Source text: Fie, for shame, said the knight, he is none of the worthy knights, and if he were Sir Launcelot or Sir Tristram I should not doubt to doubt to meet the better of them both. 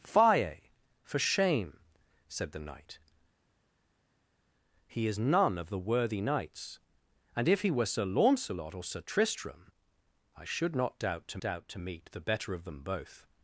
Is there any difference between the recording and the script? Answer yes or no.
no